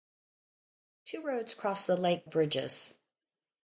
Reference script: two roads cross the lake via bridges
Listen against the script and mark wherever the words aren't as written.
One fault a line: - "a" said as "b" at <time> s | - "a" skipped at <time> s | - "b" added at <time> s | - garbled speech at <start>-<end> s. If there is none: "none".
- "via" skipped at 2.3 s